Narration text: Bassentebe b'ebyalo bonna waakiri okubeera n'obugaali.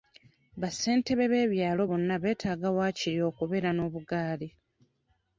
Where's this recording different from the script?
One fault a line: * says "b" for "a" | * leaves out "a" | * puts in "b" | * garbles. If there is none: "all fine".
* puts in "beetaaga"